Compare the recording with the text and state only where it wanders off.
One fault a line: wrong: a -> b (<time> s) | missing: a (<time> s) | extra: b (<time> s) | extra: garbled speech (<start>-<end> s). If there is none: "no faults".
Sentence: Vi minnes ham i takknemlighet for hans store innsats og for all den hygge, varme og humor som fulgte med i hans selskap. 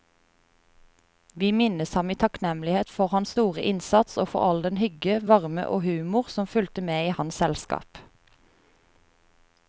no faults